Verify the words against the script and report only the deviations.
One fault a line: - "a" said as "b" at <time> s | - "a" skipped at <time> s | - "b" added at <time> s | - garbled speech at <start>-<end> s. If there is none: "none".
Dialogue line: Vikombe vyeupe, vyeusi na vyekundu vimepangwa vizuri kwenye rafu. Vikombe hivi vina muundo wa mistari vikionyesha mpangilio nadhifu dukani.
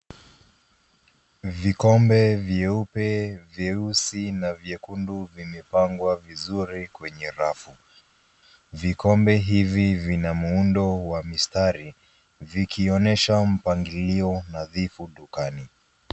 none